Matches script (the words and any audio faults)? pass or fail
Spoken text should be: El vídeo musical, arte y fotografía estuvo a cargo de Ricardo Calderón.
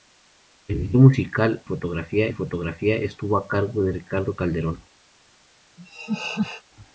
fail